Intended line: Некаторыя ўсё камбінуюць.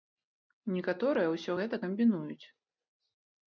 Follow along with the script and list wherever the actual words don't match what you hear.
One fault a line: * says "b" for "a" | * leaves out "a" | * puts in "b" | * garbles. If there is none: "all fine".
* puts in "гэта"